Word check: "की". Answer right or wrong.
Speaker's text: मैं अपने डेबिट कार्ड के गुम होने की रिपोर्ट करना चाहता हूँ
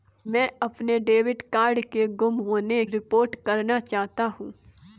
wrong